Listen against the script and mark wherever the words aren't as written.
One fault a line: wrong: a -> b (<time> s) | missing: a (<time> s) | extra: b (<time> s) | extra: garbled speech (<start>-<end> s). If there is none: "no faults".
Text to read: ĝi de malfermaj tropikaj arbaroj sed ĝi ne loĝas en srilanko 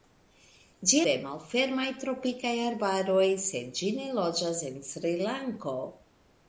no faults